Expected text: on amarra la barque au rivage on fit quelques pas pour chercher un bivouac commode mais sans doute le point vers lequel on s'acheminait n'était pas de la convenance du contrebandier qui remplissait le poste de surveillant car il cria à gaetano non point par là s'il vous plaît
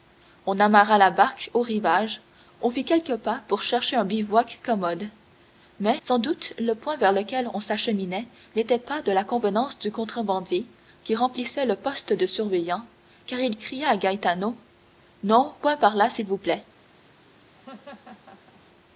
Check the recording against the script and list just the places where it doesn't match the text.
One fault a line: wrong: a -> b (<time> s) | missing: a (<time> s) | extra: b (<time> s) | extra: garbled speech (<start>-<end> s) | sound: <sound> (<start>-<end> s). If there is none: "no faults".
sound: laugh (17.5-18.6 s)